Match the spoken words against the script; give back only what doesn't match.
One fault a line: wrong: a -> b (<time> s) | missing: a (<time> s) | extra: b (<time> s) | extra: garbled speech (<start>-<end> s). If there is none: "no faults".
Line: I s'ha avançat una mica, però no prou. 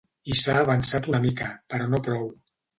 no faults